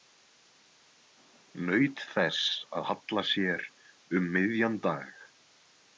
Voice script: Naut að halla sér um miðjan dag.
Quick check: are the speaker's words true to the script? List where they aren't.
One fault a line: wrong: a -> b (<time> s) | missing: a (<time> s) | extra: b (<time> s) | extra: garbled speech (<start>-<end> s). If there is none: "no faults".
extra: þess (2.1 s)